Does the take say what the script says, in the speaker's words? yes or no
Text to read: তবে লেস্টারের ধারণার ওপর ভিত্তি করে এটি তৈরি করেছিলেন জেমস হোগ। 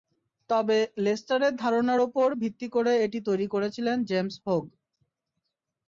yes